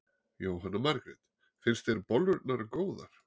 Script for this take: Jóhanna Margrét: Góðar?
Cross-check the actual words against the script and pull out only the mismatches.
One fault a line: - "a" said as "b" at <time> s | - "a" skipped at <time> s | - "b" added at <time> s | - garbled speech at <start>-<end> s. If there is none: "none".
- "Finnst þér bollurnar" added at 1.6 s